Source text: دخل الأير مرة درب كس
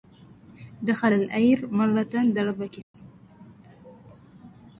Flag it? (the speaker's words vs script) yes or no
no